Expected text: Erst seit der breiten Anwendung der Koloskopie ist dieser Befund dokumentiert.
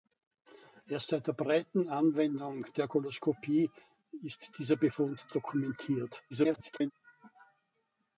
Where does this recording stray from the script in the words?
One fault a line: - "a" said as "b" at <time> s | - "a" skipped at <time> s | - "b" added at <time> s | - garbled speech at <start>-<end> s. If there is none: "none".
- garbled speech at 6.3-6.9 s